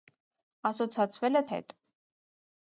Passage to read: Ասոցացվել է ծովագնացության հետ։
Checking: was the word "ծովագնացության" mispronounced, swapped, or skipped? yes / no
yes